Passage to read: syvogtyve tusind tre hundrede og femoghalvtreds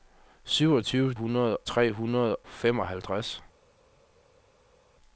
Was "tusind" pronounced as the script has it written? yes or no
no